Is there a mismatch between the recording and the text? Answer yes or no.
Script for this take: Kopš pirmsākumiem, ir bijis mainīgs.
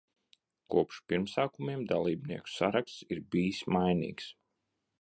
yes